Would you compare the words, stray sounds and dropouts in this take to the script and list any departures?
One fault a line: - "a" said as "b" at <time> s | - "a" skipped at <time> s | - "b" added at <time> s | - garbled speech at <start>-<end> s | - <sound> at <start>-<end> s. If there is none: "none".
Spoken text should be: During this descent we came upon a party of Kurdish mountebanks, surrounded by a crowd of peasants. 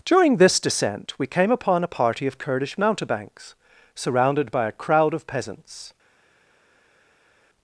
none